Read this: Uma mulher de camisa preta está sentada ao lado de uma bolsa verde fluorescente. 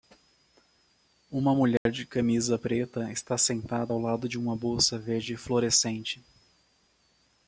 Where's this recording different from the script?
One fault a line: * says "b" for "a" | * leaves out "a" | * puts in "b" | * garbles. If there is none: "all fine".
all fine